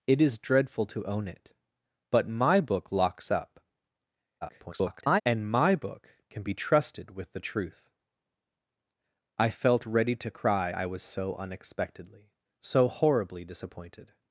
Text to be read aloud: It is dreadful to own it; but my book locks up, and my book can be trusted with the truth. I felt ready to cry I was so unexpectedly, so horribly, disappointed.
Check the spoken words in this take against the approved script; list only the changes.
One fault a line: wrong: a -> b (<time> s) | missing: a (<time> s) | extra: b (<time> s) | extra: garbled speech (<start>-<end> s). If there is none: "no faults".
extra: garbled speech (4.4-5.2 s)